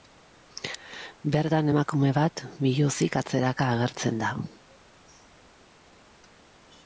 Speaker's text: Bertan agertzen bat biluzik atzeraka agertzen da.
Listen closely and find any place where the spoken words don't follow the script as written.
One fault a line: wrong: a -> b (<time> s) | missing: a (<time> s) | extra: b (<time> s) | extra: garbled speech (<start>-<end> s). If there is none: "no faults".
wrong: agertzen -> emakume (1.7 s)